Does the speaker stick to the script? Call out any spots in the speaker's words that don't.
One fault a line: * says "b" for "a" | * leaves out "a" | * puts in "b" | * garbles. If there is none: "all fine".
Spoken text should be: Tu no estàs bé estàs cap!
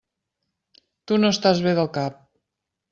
* says "del" for "estàs"